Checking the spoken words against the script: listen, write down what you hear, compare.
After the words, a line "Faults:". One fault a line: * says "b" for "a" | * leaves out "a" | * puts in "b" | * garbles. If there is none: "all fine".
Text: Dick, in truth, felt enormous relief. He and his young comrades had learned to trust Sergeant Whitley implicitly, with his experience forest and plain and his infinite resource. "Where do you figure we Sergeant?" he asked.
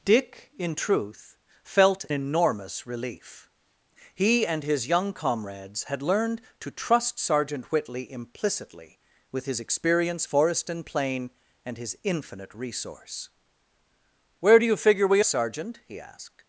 Dick, in truth, felt enormous relief. He and his young comrades had learned to trust Sergeant Whitley implicitly, with his experience forest and plain and his infinite resource. "Where do you figure we Sergeant?" he asked.
Faults:
all fine